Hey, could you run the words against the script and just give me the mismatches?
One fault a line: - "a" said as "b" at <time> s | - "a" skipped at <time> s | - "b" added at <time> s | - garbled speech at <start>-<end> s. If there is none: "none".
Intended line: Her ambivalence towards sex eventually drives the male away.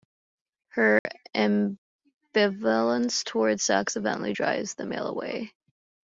none